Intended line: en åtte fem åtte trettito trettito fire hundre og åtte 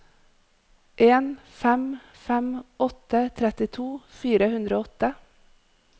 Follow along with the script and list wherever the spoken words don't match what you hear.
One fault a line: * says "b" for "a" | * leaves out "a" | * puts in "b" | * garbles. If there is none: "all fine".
* says "fem" for "åtte"
* leaves out "trettito"